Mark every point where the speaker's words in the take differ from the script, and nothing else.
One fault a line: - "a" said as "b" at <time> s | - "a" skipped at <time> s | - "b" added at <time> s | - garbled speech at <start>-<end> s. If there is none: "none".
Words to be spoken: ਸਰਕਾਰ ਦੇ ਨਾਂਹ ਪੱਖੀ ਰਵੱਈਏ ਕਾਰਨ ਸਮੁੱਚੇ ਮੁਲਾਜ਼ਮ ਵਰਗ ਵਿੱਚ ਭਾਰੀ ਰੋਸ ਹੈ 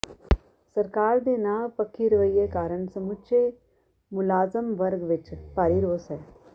none